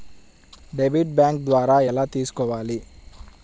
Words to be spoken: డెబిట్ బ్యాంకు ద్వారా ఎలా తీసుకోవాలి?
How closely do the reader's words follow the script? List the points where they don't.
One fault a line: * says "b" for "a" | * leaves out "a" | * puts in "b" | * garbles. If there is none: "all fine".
all fine